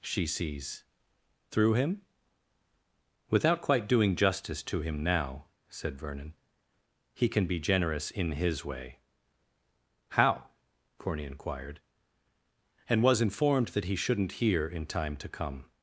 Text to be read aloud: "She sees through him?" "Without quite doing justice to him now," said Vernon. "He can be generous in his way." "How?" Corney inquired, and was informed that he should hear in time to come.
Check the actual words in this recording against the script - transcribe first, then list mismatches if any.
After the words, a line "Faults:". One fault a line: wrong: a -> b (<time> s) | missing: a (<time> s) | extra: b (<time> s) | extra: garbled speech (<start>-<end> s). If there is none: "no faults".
"She sees through him?" "Without quite doing justice to him now," said Vernon. "He can be generous in his way." "How?" Corney inquired, and was informed that he shouldn't hear in time to come.
Faults:
wrong: should -> shouldn't (13.9 s)